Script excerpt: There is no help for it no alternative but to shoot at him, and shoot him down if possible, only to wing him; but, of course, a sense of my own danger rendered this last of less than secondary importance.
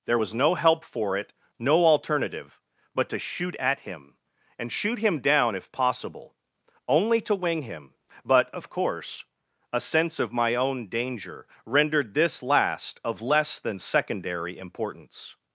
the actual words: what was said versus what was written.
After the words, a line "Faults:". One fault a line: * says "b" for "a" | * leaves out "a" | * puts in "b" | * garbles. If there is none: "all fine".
There was no help for it no alternative but to shoot at him, and shoot him down if possible, only to wing him; but, of course, a sense of my own danger rendered this last of less than secondary importance.
Faults:
* says "was" for "is"